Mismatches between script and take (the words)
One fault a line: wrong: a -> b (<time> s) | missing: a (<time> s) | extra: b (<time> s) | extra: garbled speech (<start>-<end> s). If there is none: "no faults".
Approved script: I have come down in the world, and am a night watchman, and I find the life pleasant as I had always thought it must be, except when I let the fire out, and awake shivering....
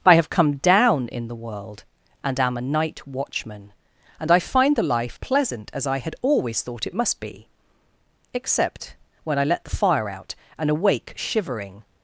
no faults